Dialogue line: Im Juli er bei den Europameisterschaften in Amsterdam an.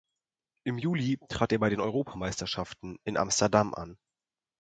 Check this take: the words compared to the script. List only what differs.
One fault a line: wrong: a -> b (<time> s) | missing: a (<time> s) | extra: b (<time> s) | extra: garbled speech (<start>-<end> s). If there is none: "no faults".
extra: trat (1.3 s)